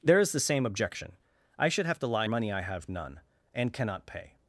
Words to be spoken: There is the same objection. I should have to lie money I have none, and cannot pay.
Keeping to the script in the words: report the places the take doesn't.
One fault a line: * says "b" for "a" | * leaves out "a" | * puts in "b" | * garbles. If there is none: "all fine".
all fine